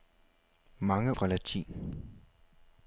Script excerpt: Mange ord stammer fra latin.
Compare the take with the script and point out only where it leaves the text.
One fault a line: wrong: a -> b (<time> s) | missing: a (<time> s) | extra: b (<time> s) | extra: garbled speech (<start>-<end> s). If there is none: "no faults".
missing: ord stammer (1.1 s)